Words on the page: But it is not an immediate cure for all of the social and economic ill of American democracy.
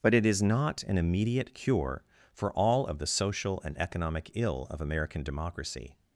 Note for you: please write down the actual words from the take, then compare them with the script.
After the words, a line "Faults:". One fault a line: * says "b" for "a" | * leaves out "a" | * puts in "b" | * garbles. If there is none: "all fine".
But it is not an immediate cure for all of the social and economic ill of American democracy.
Faults:
all fine